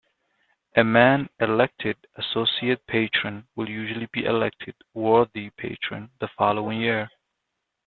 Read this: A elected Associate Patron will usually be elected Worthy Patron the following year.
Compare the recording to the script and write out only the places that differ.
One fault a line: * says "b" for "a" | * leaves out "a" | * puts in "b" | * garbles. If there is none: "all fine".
* puts in "man"